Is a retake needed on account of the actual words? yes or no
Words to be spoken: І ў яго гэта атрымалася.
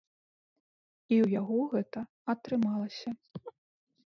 no